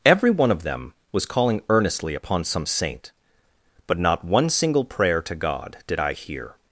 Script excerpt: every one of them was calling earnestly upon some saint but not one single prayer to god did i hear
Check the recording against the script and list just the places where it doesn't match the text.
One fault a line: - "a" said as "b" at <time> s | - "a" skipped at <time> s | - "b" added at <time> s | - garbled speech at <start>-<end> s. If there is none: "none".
none